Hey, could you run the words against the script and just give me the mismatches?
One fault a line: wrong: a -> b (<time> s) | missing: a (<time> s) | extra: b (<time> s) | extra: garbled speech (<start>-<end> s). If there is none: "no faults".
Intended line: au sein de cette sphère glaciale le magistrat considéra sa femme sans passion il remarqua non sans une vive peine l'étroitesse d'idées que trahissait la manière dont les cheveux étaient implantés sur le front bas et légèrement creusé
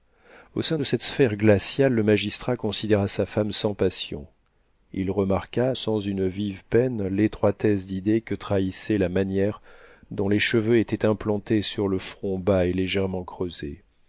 missing: non (5.7 s)